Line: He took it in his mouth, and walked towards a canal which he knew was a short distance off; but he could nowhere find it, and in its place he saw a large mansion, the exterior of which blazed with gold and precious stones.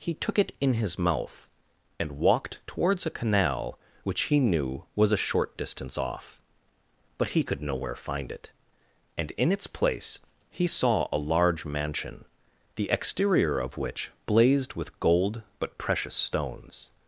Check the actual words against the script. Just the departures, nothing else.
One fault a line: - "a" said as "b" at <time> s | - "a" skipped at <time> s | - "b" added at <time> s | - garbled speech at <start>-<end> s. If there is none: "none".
- "and" said as "but" at 15.6 s